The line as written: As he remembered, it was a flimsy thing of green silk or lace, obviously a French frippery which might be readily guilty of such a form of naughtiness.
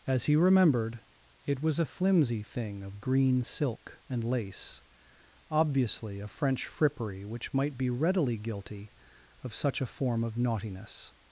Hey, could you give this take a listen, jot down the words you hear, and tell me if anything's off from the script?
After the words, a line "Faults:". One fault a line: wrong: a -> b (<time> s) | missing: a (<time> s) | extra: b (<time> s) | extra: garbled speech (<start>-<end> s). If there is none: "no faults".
As he remembered, it was a flimsy thing of green silk and lace, obviously a French frippery which might be readily guilty of such a form of naughtiness.
Faults:
wrong: or -> and (4.1 s)